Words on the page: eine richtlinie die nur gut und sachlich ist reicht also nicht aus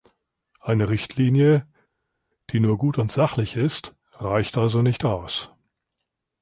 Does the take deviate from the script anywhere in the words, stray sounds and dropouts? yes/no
no